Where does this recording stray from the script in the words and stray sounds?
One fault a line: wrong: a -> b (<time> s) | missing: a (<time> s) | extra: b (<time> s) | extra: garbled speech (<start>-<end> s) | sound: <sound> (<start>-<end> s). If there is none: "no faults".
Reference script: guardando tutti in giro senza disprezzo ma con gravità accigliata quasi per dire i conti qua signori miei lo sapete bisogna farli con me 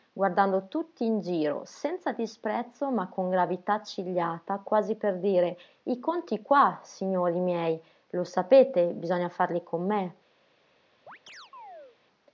sound: chirp (11.1-12.0 s)